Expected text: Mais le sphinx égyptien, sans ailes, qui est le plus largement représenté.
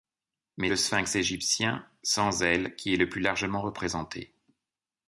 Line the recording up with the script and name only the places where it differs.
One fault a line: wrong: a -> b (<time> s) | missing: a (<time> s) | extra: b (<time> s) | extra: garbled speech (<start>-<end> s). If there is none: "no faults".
no faults